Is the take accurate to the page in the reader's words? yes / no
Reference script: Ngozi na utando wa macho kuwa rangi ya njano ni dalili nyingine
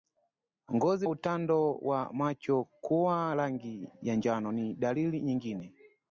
no